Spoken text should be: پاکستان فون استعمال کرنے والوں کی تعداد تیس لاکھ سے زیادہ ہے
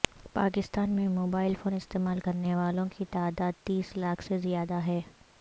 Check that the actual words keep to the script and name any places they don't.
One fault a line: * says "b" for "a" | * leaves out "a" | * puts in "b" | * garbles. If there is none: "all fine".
* puts in "میں موبائل"